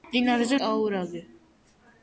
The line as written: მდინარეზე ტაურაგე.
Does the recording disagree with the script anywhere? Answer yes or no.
no